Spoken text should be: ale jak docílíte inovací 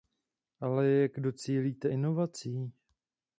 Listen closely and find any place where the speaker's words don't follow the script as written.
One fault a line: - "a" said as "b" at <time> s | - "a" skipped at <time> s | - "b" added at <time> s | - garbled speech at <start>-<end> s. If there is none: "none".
none